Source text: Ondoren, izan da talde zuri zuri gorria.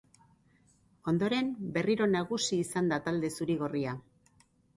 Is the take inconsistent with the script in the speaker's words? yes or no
yes